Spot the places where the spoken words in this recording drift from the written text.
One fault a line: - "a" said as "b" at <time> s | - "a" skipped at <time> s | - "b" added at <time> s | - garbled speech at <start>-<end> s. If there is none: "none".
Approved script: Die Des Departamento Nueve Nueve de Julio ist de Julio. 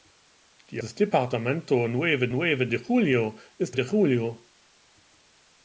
none